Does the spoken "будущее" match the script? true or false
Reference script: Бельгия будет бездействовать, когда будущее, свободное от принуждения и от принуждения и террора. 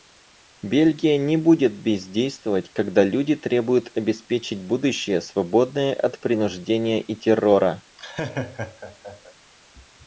false